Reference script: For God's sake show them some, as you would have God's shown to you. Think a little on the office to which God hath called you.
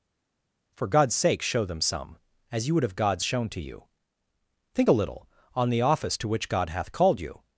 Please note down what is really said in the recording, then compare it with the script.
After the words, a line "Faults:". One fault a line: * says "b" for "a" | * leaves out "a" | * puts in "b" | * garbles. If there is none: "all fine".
For God's sake show them some, as you would have God's shown to you. Think a little on the office to which God hath called you.
Faults:
all fine